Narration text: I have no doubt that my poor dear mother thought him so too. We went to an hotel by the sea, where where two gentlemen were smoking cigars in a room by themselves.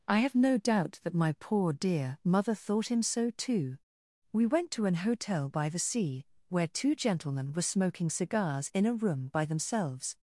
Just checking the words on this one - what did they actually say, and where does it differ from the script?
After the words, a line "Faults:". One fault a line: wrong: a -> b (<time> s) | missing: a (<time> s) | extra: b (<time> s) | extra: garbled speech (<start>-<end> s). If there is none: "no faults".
I have no doubt that my poor dear mother thought him so too. We went to an hotel by the sea, where two gentlemen were smoking cigars in a room by themselves.
Faults:
missing: where (6.7 s)